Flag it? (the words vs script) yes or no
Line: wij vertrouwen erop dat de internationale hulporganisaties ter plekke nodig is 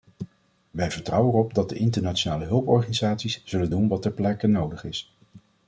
yes